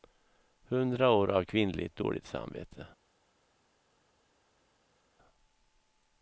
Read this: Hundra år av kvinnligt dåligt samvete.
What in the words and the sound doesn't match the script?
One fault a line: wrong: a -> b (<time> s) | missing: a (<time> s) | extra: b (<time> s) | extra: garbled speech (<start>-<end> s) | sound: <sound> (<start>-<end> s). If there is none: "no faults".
no faults